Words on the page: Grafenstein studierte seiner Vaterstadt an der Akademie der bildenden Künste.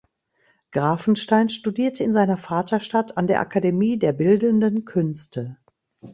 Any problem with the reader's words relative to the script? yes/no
yes